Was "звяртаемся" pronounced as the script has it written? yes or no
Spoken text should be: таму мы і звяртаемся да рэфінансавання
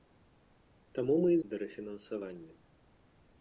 no